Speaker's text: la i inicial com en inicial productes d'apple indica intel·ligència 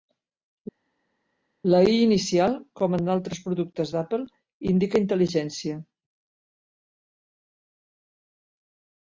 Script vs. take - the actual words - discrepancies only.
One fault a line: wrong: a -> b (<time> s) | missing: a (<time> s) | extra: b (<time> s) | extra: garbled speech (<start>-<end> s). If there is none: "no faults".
wrong: inicial -> altres (3.2 s)